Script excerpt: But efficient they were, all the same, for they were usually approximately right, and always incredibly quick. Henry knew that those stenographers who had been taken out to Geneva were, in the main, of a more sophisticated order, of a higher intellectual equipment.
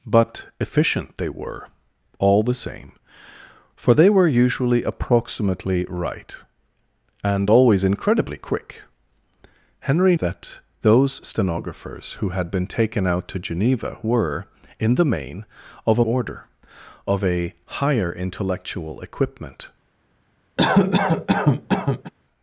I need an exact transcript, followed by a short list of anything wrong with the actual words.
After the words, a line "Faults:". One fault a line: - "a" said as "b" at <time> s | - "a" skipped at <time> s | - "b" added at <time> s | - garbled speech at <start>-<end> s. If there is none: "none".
But efficient they were, all the same, for they were usually approximately right, and always incredibly quick. Henry that those stenographers who had been taken out to Geneva were, in the main, of a order, of a higher intellectual equipment.
Faults:
- "knew" skipped at 10.1 s
- "more sophisticated" skipped at 16.1 s